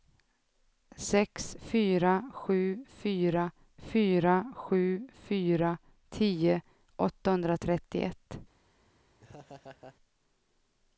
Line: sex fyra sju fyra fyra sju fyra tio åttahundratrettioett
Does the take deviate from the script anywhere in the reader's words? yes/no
no